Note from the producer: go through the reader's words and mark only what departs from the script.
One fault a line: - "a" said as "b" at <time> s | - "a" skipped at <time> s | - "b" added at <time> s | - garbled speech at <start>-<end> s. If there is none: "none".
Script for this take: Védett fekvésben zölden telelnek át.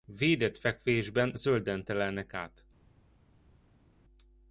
none